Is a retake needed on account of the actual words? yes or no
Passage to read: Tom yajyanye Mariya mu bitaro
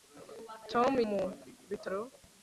yes